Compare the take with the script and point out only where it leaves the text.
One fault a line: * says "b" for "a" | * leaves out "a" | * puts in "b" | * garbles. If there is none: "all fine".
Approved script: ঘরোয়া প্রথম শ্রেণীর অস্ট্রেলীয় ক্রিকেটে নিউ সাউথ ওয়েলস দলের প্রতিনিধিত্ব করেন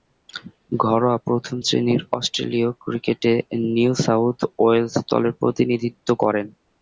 all fine